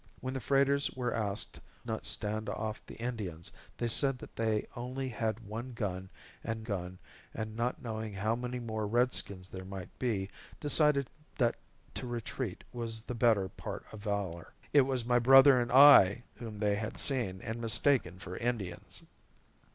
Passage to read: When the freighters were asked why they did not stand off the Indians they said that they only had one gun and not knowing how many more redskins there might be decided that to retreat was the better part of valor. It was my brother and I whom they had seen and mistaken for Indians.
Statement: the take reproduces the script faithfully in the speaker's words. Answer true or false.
false